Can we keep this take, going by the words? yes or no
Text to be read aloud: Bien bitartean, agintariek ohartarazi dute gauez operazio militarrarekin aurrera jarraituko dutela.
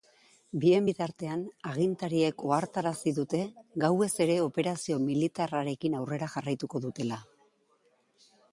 no